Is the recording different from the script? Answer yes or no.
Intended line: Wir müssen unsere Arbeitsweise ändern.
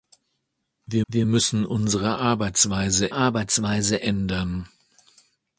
yes